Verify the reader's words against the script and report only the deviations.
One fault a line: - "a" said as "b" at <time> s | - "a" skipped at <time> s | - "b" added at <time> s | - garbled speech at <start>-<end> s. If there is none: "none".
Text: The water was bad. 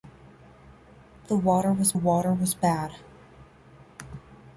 - "water was" added at 1.9 s